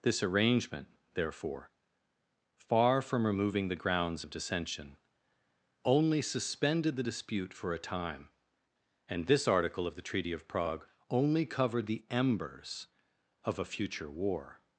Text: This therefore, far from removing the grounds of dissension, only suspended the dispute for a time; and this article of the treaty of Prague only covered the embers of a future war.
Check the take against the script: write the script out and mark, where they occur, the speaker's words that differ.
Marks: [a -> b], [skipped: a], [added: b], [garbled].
This [added: arrangement] therefore, far from removing the grounds of dissension, only suspended the dispute for a time; and this article of the treaty of Prague only covered the embers of a future war.